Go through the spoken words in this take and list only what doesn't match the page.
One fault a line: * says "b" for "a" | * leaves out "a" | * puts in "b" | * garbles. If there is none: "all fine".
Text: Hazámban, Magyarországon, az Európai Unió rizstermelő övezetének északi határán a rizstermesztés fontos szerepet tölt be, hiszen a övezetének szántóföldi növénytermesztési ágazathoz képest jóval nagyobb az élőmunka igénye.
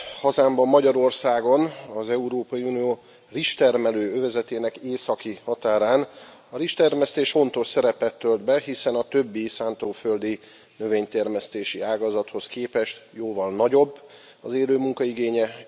* says "többi" for "övezetének"